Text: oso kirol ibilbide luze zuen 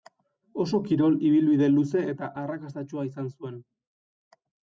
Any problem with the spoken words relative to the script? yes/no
yes